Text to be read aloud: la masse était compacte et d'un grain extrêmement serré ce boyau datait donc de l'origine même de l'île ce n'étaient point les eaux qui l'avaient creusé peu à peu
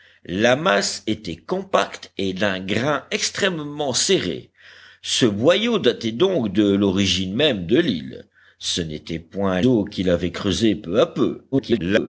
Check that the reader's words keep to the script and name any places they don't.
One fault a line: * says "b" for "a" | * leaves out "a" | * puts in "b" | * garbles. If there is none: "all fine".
* leaves out "les"
* garbles